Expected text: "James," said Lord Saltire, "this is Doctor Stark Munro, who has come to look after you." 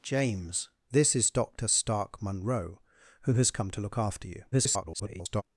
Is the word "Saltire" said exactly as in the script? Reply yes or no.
no